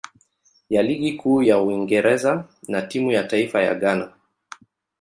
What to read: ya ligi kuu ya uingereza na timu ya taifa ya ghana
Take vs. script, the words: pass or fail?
pass